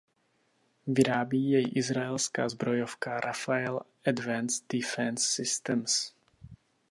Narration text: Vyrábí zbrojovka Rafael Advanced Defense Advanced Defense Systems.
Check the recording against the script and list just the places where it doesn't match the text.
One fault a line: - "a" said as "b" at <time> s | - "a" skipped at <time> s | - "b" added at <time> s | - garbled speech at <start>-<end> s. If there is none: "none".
- "jej izraelská" added at 1.5 s
- "Advanced Defense" skipped at 5.3 s